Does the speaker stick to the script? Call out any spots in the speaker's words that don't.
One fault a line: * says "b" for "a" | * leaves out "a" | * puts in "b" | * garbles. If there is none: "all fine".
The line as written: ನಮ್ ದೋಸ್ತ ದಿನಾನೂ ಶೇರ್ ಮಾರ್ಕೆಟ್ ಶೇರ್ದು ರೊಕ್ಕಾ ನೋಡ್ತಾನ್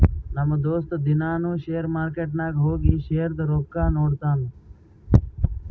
* puts in "ನಾಗ್ ಹೋಗಿ"